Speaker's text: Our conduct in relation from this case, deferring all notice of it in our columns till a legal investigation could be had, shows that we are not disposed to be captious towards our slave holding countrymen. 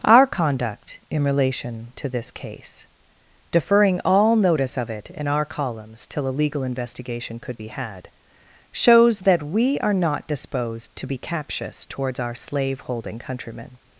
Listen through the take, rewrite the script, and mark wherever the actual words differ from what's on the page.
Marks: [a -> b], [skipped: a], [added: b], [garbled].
Our conduct in relation [from -> to] this case, deferring all notice of it in our columns till a legal investigation could be had, shows that we are not disposed to be captious towards our slave holding countrymen.